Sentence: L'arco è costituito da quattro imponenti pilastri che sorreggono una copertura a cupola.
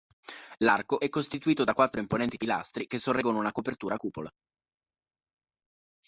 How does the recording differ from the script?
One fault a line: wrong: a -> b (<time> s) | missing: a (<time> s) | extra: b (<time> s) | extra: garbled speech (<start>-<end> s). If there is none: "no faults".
no faults